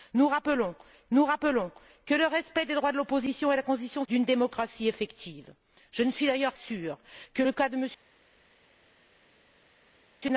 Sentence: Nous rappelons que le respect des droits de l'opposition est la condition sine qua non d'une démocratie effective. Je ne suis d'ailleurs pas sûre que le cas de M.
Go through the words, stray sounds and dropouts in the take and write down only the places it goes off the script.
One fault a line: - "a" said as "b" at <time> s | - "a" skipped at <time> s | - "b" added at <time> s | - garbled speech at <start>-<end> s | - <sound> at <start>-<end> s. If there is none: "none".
- "nous rappelons" added at 1.1 s
- "sine qua non" skipped at 4.0 s
- "pas" skipped at 6.5 s